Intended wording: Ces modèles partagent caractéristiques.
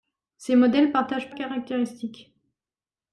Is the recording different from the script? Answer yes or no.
no